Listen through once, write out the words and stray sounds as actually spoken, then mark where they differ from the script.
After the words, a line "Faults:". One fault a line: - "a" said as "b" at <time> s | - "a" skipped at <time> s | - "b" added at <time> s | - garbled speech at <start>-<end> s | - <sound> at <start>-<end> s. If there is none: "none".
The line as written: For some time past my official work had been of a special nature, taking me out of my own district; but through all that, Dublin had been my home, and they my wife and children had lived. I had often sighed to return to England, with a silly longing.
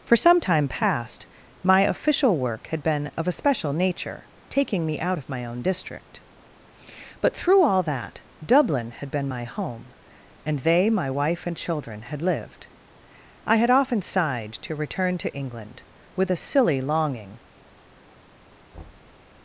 For some time past my official work had been of a special nature, taking me out of my own district; but through all that, Dublin had been my home, and they my wife and children had lived. I had often sighed to return to England, with a silly longing.
Faults:
- thud at 18.7-19.2 s